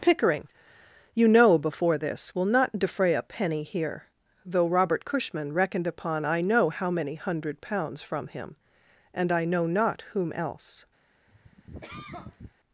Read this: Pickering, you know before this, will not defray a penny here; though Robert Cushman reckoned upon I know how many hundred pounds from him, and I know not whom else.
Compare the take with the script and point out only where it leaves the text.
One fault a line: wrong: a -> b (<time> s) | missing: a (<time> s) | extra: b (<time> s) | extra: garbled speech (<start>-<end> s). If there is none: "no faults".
no faults